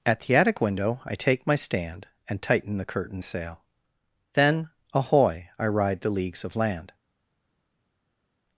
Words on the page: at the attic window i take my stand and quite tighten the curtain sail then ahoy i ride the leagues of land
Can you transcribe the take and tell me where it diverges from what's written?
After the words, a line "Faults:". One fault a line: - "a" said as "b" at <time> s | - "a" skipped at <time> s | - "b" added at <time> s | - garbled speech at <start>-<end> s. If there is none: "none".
at the attic window i take my stand and tighten the curtain sail then ahoy i ride the leagues of land
Faults:
- "quite" skipped at 2.4 s